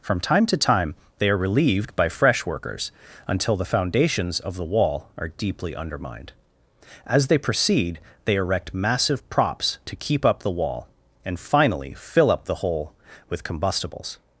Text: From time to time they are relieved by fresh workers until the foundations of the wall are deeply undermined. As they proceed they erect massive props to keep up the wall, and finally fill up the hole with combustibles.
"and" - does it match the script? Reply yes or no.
yes